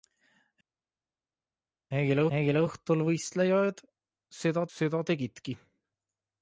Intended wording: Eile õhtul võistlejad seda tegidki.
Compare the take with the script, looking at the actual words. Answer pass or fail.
fail